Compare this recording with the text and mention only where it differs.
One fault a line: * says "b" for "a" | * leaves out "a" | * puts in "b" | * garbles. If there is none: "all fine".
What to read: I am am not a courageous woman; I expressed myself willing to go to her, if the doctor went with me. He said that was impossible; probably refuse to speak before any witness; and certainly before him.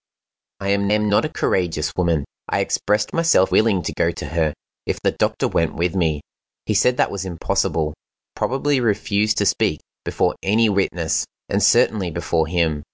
all fine